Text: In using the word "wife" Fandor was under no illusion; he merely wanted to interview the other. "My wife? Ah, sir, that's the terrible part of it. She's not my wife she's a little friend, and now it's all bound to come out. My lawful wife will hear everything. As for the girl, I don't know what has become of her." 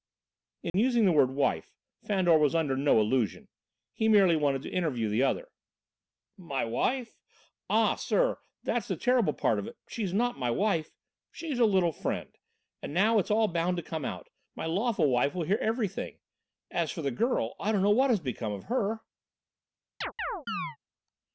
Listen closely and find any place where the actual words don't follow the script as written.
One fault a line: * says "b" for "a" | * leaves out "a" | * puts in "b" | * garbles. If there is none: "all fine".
all fine